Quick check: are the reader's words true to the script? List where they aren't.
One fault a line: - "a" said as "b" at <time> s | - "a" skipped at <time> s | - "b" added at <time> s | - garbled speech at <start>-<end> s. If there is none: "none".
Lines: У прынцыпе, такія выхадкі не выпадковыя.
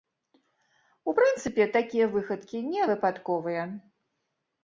none